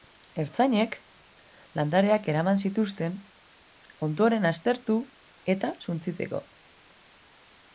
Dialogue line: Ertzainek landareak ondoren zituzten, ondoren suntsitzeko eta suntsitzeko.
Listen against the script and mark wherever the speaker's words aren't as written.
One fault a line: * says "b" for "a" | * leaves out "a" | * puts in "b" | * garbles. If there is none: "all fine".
* says "eraman" for "ondoren"
* says "aztertu" for "suntsitzeko"